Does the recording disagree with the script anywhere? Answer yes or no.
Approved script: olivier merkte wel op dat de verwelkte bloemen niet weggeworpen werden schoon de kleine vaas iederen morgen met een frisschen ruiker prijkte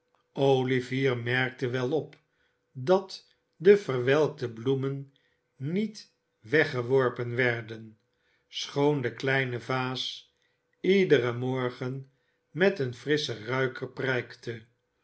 no